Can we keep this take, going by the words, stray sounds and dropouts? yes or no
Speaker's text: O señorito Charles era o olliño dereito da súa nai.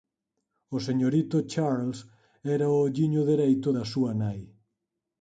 yes